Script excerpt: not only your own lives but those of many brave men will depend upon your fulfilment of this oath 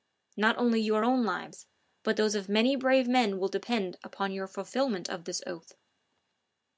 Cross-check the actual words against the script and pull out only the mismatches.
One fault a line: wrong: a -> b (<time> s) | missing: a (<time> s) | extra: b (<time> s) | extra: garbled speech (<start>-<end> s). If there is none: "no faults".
no faults